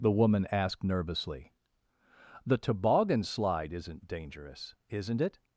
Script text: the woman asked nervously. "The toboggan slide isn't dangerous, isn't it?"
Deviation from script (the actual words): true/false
false